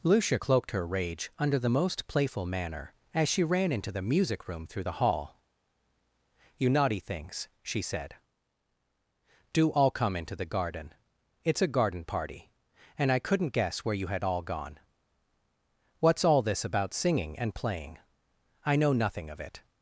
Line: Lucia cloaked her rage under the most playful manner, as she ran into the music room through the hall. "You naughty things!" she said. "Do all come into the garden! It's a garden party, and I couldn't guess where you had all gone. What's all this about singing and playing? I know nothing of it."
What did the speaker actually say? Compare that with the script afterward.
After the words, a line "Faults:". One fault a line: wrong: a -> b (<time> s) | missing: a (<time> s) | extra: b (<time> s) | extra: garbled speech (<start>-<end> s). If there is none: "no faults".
Lucia cloaked her rage under the most playful manner, as she ran into the music room through the hall. "You naughty things!" she said. "Do all come into the garden! It's a garden party, and I couldn't guess where you had all gone. What's all this about singing and playing? I know nothing of it."
Faults:
no faults